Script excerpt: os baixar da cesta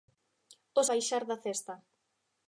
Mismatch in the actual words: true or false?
false